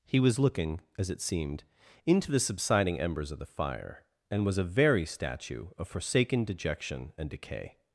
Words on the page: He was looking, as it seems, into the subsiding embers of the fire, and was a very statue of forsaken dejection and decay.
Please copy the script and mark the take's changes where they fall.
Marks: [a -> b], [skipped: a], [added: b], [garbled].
He was looking, as it [seems, -> seemed] into the subsiding embers of the fire, and was a very statue of forsaken dejection and decay.